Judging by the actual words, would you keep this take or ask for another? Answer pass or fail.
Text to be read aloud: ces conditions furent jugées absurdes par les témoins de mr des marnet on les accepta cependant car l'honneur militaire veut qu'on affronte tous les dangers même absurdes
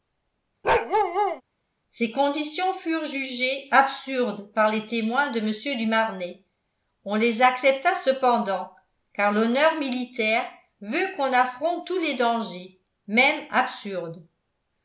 fail